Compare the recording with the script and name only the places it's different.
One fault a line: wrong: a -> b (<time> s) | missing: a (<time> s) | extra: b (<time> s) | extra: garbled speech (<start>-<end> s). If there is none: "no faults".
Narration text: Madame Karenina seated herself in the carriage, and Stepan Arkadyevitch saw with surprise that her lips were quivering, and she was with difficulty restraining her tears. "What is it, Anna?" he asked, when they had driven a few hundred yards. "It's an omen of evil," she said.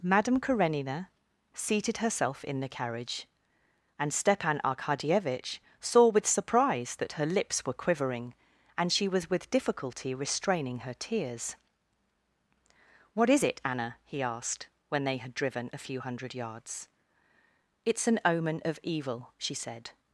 no faults